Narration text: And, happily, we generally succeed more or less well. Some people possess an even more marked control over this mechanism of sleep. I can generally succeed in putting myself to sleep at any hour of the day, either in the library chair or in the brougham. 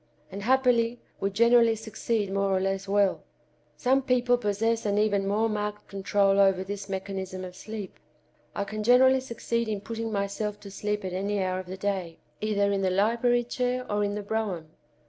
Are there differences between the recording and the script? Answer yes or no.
no